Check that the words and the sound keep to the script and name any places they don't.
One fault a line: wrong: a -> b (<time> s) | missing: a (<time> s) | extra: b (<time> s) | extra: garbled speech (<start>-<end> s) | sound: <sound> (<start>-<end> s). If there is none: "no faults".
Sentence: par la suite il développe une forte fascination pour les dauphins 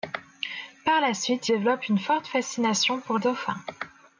missing: il (1.5 s)
missing: les (3.2 s)